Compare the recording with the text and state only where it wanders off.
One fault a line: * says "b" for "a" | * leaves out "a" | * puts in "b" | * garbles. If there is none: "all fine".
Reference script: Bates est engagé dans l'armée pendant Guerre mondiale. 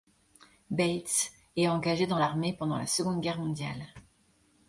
* puts in "la Seconde"